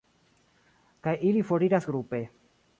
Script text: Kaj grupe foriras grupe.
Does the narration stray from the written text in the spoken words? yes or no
yes